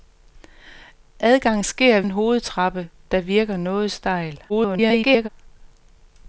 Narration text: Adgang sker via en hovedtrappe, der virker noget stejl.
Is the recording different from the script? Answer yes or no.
yes